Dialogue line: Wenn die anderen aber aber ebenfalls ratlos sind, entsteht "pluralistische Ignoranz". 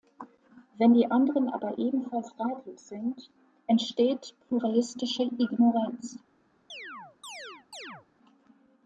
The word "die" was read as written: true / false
true